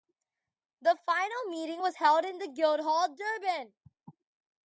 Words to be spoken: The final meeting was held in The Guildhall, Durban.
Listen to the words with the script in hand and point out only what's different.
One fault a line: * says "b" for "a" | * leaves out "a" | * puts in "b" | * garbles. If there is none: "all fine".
all fine